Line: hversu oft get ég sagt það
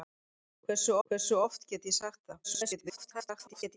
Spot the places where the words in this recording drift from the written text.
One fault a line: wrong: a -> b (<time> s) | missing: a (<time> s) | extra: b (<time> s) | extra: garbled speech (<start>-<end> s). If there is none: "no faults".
extra: hversu (1.1 s)
extra: garbled speech (2.4-3.8 s)